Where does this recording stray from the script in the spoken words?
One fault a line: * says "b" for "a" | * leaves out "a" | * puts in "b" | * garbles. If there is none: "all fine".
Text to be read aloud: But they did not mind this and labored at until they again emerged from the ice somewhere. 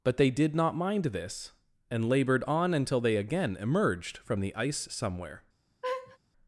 * says "on" for "at"